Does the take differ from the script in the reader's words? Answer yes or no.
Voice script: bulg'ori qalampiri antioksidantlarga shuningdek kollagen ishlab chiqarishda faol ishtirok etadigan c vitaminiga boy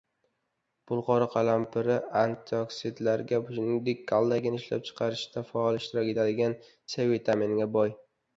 no